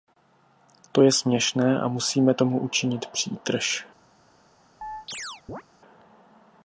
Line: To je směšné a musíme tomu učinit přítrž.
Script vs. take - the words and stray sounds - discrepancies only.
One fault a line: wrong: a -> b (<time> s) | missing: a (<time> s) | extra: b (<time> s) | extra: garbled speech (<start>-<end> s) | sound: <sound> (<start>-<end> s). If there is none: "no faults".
sound: chirp (4.8-5.6 s)